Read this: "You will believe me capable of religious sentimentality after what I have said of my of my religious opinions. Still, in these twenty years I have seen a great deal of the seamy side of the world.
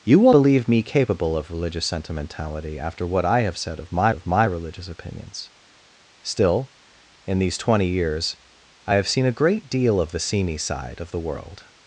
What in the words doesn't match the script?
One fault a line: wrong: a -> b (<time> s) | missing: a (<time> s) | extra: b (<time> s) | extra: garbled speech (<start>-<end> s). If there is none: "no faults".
no faults